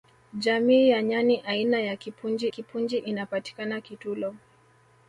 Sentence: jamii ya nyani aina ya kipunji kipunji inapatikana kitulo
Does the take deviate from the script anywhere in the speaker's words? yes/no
no